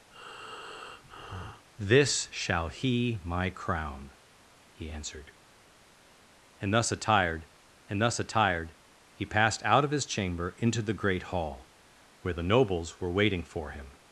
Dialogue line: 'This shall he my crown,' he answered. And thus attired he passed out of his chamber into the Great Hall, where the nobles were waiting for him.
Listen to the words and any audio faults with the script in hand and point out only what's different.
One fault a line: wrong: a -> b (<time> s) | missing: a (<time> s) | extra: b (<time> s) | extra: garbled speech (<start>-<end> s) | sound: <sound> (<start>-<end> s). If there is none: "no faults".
sound: breath (0.1-1.7 s)
extra: and thus attired (7.9 s)